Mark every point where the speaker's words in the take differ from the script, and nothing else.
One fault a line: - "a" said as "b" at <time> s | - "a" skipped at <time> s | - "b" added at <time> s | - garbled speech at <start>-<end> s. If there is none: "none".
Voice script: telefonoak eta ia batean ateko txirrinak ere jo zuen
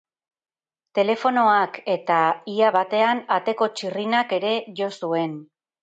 none